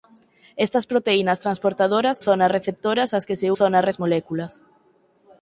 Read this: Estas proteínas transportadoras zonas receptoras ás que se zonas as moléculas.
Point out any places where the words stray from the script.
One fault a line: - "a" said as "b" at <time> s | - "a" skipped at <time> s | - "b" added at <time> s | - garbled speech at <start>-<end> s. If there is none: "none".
none